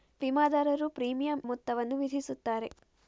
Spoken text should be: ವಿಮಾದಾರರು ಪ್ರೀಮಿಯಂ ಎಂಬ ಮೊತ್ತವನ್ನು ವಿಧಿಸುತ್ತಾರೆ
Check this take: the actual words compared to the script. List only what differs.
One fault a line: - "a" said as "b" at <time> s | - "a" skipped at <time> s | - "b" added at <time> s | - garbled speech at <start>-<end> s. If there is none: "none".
- "ಎಂಬ" skipped at 1.4 s